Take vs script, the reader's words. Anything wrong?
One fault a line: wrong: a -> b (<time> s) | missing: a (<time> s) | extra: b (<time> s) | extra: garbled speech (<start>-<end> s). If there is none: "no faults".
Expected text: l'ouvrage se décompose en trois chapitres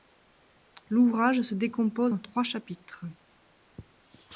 no faults